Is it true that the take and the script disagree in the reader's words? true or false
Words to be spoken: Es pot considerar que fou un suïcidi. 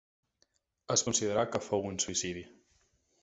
true